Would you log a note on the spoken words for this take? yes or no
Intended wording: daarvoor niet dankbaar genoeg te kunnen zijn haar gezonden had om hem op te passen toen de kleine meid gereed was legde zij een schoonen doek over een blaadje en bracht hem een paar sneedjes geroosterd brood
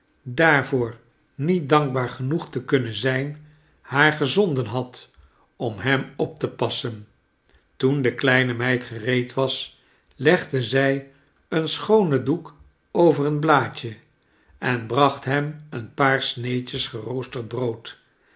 no